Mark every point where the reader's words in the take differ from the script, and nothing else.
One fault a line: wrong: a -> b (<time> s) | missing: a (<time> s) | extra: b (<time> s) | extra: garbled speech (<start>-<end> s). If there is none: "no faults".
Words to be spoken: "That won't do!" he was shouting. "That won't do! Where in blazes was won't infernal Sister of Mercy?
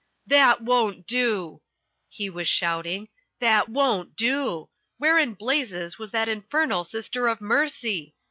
wrong: won't -> that (6.1 s)